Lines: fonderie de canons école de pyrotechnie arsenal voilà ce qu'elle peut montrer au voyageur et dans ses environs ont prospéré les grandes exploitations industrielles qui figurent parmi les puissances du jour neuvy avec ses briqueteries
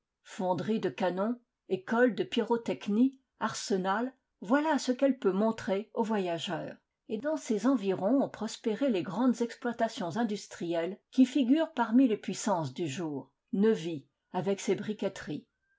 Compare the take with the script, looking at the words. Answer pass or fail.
pass